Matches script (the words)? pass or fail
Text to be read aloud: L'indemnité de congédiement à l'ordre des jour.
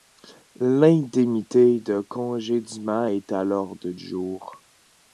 fail